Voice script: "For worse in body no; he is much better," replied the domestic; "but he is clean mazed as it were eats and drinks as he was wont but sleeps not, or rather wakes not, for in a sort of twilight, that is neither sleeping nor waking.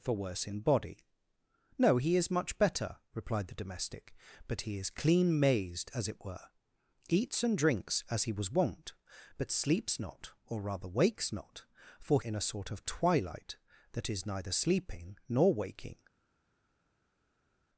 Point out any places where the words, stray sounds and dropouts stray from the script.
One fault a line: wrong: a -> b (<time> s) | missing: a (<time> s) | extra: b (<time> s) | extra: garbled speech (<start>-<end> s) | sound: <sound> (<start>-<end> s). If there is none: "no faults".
no faults